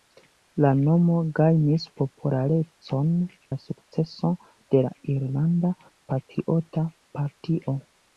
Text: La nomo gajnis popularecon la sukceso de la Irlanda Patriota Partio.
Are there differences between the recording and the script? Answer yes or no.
no